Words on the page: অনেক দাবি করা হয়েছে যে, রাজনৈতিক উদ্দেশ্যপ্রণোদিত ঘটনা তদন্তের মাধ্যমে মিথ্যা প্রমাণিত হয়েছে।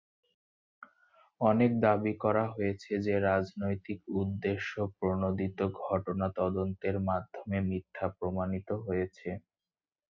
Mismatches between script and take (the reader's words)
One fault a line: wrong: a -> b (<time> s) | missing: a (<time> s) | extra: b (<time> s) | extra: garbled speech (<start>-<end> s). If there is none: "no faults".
no faults